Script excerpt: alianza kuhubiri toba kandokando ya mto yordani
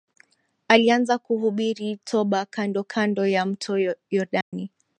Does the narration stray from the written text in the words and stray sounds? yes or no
yes